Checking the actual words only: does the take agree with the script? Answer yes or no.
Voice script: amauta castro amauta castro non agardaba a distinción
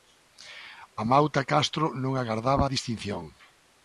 no